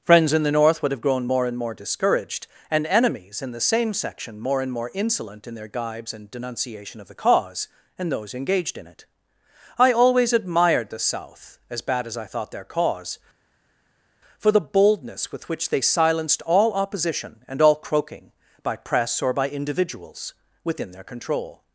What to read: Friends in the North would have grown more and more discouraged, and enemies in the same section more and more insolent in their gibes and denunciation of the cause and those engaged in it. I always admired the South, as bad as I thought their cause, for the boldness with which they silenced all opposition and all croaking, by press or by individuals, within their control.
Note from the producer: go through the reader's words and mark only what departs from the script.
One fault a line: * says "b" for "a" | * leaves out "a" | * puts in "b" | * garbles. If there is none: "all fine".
all fine